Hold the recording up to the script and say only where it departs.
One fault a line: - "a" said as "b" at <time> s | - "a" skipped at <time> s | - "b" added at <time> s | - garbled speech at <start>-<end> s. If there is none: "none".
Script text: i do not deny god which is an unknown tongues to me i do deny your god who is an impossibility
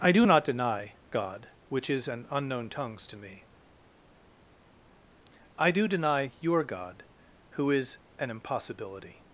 none